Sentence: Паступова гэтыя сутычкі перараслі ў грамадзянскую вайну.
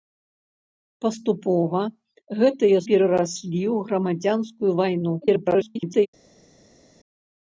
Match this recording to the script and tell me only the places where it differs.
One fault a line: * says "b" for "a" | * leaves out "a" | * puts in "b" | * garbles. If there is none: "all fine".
* leaves out "сутычкі"
* garbles